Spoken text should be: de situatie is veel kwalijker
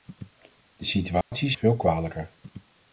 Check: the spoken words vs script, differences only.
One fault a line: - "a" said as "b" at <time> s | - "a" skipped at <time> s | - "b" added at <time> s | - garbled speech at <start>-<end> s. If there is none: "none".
none